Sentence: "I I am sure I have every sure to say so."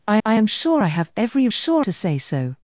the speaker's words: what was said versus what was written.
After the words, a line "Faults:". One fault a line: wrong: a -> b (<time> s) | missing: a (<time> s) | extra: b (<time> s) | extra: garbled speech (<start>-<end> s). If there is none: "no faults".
"I I am sure I have every sure to say so."
Faults:
no faults